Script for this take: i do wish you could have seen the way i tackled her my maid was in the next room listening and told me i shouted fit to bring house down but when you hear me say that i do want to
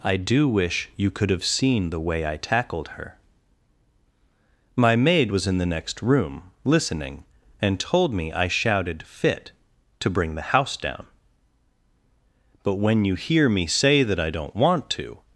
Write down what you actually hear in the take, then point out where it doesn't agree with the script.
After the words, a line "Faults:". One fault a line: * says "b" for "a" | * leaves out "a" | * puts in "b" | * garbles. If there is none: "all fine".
i do wish you could have seen the way i tackled her my maid was in the next room listening and told me i shouted fit to bring the house down but when you hear me say that i don't want to
Faults:
* puts in "the"
* says "don't" for "do"